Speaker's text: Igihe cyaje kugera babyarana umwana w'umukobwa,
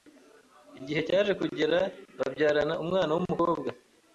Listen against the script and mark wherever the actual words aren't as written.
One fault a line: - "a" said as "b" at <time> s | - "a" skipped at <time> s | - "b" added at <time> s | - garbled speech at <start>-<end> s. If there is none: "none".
none